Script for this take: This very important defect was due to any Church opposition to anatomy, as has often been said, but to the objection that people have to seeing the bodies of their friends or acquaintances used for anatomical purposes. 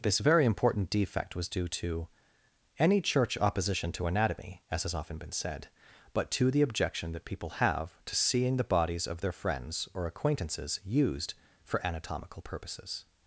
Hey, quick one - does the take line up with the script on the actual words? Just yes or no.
yes